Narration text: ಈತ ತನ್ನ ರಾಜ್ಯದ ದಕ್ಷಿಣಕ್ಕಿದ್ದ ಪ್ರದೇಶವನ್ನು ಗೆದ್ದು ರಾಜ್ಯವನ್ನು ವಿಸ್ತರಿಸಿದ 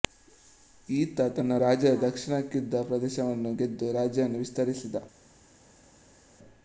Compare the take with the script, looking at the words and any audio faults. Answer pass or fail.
pass